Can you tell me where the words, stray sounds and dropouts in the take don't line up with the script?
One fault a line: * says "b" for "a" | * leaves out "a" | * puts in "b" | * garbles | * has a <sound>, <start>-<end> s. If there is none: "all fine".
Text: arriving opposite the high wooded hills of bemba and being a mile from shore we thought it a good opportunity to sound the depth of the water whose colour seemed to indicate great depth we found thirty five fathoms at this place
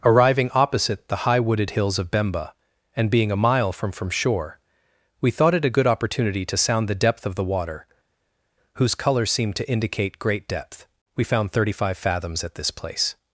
* puts in "from"